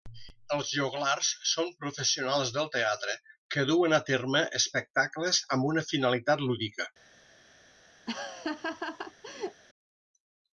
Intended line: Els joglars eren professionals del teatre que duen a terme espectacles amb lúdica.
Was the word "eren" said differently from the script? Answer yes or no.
yes